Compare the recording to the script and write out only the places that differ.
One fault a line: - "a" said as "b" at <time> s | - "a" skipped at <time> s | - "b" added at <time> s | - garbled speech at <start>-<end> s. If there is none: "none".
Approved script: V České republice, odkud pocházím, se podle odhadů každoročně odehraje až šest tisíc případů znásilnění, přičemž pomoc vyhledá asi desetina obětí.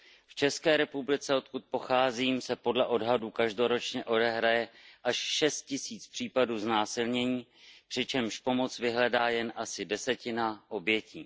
- "jen" added at 9.3 s